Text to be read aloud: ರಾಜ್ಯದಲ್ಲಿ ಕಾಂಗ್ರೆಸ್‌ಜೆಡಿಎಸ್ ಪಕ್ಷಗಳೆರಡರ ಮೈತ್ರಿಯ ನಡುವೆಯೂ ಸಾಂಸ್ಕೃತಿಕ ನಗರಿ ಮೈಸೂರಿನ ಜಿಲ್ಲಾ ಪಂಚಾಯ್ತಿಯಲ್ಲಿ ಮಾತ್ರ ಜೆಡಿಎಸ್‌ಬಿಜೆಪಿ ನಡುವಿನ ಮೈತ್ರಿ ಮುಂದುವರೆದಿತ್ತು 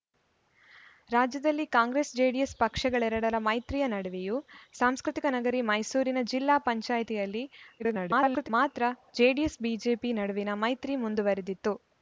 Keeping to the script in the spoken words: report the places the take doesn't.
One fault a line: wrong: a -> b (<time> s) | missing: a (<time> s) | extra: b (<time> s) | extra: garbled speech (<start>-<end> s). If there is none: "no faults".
extra: garbled speech (7.8-8.5 s)